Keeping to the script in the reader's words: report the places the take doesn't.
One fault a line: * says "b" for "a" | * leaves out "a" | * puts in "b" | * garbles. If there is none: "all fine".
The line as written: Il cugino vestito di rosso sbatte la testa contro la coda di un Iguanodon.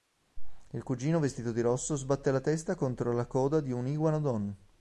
all fine